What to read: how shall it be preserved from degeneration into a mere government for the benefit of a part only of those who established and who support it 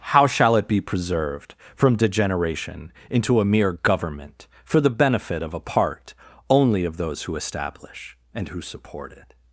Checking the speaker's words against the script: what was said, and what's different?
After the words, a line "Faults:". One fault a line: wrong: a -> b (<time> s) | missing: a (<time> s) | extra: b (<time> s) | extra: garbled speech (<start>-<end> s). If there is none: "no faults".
how shall it be preserved from degeneration into a mere government for the benefit of a part only of those who establish and who support it
Faults:
wrong: established -> establish (7.3 s)